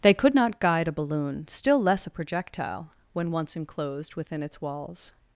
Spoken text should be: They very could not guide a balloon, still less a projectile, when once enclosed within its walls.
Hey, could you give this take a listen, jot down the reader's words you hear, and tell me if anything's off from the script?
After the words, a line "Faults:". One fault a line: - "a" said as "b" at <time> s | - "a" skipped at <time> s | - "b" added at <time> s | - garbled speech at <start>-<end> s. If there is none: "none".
They could not guide a balloon, still less a projectile, when once enclosed within its walls.
Faults:
- "very" skipped at 0.1 s